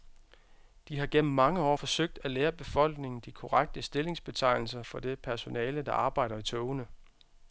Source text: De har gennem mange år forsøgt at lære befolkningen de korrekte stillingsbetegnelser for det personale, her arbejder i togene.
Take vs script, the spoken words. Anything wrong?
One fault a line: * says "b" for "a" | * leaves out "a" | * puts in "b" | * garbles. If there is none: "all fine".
* says "der" for "her"